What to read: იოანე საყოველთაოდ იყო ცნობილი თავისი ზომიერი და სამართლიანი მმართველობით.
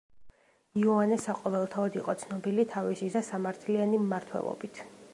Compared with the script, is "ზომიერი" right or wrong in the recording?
wrong